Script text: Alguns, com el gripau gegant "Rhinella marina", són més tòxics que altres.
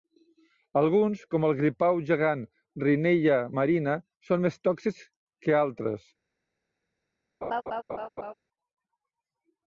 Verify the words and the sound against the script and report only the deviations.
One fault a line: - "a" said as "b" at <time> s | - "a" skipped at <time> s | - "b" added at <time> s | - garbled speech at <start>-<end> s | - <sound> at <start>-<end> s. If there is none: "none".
- laugh at 7.4-8.3 s